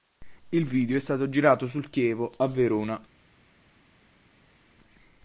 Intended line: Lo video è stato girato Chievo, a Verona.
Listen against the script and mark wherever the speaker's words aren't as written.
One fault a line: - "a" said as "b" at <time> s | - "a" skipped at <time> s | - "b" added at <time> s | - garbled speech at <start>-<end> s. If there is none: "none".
- "Lo" said as "Il" at 0.5 s
- "sul" added at 1.7 s